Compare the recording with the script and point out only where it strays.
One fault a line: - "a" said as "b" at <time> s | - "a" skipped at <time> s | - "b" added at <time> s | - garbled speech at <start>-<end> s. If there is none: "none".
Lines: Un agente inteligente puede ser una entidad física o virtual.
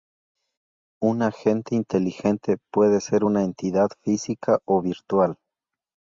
none